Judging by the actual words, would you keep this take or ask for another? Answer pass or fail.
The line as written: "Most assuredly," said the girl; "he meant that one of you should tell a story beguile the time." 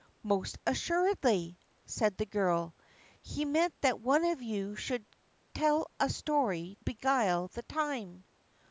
pass